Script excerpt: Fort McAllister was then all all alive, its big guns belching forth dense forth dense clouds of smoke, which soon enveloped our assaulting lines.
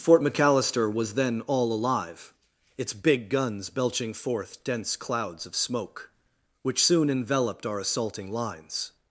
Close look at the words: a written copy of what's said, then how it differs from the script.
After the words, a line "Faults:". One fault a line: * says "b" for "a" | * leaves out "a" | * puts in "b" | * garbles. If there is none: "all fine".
Fort McAllister was then all alive, its big guns belching forth dense clouds of smoke, which soon enveloped our assaulting lines.
Faults:
* leaves out "all"
* leaves out "forth dense"